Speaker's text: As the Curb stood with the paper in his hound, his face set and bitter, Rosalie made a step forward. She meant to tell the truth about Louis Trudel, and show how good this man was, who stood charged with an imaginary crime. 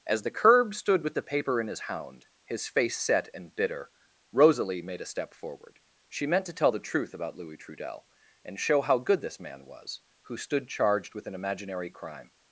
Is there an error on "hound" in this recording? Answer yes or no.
no